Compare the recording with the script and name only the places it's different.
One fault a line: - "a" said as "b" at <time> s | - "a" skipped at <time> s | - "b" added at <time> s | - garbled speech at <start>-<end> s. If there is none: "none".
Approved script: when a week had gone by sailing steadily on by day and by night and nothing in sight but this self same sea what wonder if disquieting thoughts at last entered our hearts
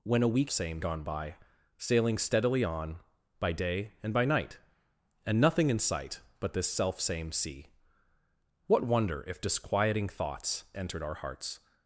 - "had" said as "same" at 0.5 s
- "at last" skipped at 10.6 s